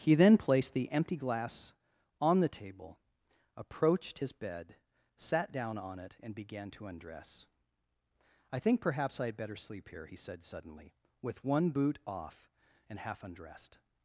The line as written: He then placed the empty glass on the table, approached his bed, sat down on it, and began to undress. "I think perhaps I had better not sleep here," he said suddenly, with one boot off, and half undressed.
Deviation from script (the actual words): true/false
true